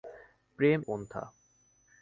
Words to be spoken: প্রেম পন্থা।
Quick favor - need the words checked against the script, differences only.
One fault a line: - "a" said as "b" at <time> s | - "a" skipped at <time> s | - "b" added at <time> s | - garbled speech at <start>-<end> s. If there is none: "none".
none